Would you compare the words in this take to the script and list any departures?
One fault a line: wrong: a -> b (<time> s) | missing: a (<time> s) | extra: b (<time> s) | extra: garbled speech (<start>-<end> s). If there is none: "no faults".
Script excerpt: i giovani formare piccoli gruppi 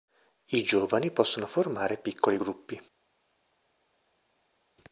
extra: possono (1.1 s)